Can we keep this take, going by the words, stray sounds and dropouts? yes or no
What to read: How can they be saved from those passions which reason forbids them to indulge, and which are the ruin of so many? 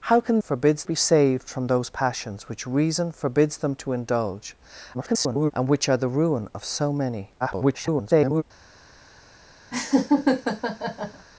no